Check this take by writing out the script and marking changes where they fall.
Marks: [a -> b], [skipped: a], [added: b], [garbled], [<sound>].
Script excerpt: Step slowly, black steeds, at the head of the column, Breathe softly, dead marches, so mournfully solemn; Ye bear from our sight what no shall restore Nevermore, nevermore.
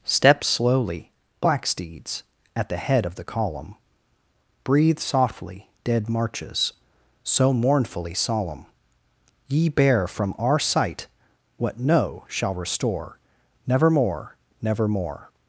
Step slowly, black steeds, at the head of the column, Breathe softly, dead marches, so mournfully solemn; Ye bear from our sight what no shall restore Nevermore, nevermore.